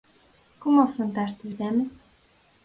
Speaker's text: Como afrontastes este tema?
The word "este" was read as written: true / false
false